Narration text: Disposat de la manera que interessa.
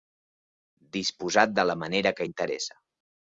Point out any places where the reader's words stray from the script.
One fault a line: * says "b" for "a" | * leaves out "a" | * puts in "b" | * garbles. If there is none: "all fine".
all fine